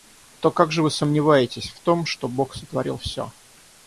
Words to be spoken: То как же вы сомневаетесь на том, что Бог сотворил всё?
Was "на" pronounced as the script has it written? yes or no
no